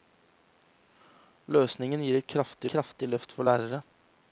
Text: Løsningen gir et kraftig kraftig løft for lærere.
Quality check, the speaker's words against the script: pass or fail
pass